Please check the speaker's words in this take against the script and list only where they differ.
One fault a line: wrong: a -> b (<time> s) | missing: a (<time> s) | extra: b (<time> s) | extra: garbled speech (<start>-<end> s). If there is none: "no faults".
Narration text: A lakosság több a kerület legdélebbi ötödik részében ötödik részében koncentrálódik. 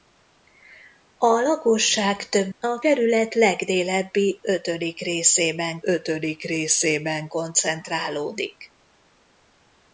no faults